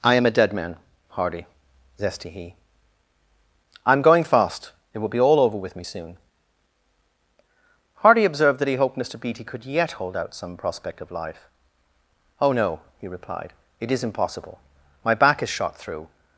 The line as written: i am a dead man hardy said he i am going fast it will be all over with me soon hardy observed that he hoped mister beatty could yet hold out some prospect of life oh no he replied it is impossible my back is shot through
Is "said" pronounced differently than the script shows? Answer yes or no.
yes